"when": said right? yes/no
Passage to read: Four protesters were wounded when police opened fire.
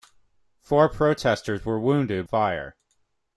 no